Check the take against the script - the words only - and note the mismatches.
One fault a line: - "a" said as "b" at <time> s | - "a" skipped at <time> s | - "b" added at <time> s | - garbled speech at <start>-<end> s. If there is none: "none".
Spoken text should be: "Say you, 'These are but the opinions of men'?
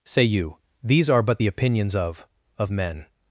- "of" added at 2.6 s